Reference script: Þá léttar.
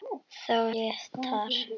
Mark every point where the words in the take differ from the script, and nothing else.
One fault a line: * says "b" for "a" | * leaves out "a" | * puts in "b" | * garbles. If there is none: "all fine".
all fine